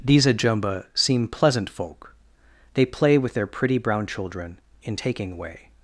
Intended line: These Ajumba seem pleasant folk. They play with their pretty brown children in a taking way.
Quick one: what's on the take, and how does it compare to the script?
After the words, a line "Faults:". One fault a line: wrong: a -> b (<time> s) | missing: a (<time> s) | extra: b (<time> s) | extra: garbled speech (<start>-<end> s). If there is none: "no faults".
These Ajumba seem pleasant folk. They play with their pretty brown children in taking way.
Faults:
missing: a (5.0 s)